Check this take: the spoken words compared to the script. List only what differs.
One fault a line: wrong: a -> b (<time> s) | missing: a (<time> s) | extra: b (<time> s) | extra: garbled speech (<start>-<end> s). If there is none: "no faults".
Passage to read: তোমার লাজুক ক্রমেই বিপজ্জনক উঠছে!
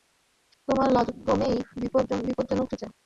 no faults